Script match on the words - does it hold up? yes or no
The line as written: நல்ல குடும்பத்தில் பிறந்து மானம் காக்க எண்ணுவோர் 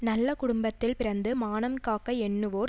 yes